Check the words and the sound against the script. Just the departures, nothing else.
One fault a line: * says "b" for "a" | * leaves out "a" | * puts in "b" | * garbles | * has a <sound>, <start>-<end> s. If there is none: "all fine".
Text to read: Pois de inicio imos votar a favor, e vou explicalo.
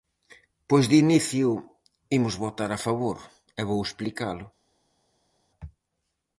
all fine